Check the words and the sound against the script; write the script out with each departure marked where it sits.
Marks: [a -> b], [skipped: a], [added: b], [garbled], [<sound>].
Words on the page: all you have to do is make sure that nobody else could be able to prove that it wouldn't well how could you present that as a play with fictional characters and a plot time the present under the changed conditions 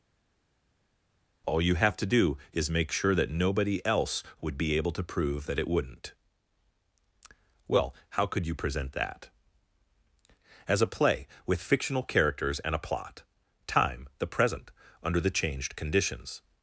all you have to do is make sure that nobody else [could -> would] be able to prove that it wouldn't well how could you present that as a play with fictional characters and a plot time the present under the changed conditions